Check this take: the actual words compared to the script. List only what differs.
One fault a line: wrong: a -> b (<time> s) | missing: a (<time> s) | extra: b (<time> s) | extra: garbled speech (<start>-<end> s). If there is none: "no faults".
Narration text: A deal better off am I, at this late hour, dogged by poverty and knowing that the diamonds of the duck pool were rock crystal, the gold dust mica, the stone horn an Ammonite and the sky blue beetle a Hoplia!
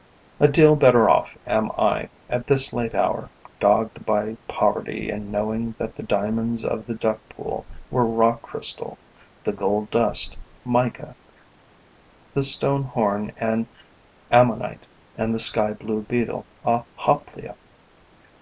no faults